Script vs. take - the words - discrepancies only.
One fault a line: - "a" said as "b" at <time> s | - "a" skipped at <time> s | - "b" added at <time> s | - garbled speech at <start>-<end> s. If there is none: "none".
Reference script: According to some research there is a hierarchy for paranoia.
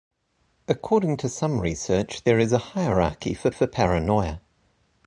- "for" added at 3.5 s